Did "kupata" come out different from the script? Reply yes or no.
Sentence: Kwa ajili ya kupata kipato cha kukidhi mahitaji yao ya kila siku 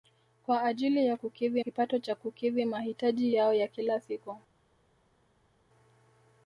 yes